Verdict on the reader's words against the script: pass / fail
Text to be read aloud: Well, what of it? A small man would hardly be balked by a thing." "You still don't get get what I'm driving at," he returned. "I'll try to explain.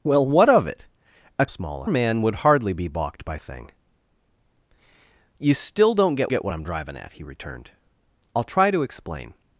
pass